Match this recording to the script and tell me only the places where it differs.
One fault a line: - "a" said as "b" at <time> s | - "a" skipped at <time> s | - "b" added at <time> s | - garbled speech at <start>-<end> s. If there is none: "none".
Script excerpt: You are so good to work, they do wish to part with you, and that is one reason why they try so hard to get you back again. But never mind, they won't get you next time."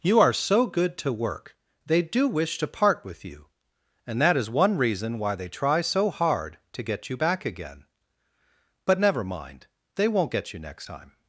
none